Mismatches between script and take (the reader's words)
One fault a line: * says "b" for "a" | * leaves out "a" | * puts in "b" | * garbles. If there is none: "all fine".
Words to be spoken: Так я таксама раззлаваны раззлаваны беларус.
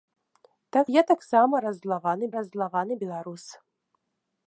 all fine